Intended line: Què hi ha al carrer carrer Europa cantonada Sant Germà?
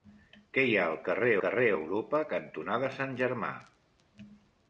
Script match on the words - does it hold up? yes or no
yes